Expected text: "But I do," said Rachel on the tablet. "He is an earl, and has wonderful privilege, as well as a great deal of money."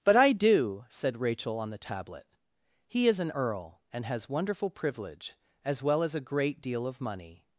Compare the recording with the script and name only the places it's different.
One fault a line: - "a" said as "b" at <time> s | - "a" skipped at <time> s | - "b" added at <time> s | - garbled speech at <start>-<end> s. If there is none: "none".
none